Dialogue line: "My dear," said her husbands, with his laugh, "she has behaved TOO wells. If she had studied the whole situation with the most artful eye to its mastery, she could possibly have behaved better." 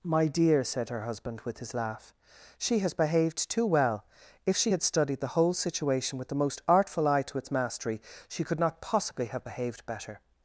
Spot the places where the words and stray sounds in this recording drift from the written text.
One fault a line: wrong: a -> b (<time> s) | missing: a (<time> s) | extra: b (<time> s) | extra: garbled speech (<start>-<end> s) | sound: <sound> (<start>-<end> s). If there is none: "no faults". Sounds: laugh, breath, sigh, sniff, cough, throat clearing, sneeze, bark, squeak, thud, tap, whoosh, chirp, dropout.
wrong: husbands -> husband (1.0 s)
wrong: wells -> well (3.7 s)
extra: not (8.6 s)